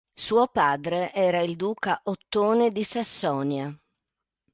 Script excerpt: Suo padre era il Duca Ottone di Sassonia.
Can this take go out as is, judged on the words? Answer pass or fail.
pass